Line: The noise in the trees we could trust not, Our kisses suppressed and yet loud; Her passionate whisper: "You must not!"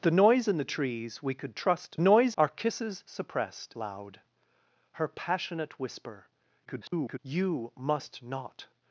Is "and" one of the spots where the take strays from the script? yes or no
yes